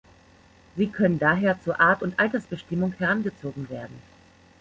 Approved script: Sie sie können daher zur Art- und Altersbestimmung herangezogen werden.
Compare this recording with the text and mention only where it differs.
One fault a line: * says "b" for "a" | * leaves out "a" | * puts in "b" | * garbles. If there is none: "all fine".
* leaves out "sie"